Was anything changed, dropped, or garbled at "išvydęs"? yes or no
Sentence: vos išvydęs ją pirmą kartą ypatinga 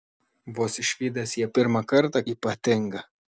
no